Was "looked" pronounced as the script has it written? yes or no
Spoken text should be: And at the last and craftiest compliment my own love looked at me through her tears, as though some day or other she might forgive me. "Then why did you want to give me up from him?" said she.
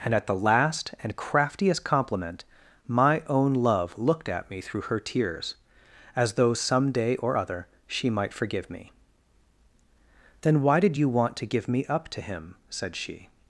yes